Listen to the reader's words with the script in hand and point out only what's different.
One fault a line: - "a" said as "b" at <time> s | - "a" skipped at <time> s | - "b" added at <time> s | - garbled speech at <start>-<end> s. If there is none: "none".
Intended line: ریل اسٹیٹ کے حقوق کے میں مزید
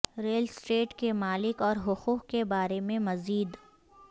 - "مالک اور" added at 1.1 s
- "بارے" added at 2.5 s